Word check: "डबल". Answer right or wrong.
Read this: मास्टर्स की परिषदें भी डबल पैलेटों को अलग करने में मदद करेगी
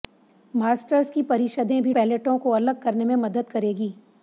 wrong